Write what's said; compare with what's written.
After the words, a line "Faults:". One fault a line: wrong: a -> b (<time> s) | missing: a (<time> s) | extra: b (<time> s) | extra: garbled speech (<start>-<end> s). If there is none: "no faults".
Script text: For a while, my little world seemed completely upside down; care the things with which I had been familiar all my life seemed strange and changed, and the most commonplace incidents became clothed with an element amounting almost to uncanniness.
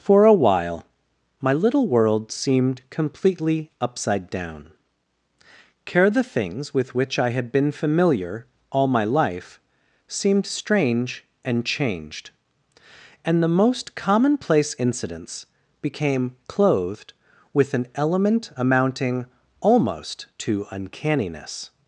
For a while, my little world seemed completely upside down; care the things with which I had been familiar all my life seemed strange and changed, and the most commonplace incidents became clothed with an element amounting almost to uncanniness.
Faults:
no faults